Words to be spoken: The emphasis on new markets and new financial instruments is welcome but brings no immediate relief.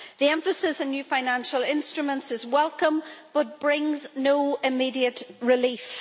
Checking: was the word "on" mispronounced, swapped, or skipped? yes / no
yes